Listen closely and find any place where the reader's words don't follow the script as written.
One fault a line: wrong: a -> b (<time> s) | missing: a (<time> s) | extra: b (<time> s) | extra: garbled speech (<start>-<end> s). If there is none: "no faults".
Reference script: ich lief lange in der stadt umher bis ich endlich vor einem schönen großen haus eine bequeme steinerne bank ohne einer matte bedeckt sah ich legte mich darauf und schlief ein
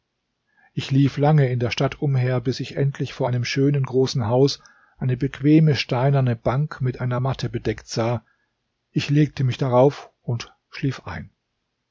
wrong: ohne -> mit (6.8 s)